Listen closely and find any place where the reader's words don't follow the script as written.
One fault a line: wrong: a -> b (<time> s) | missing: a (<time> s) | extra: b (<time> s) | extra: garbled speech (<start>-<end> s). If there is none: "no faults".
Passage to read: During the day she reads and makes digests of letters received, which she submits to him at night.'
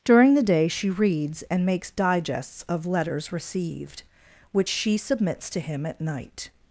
no faults